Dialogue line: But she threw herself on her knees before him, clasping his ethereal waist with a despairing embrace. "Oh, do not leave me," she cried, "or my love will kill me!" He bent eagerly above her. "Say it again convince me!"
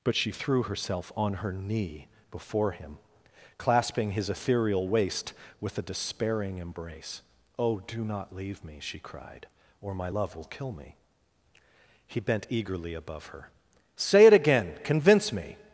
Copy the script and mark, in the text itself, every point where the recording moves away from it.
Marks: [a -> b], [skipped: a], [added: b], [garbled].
But she threw herself on her [knees -> knee] before him, clasping his ethereal waist with a despairing embrace. "Oh, do not leave me," she cried, "or my love will kill me!" He bent eagerly above her. "Say it again convince me!"